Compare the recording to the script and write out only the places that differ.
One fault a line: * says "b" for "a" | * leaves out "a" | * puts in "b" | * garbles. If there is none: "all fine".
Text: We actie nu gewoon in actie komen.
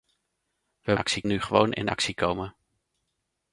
all fine